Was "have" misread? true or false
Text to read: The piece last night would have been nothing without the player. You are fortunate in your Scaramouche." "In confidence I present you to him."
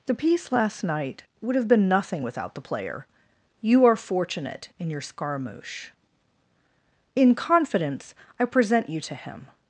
false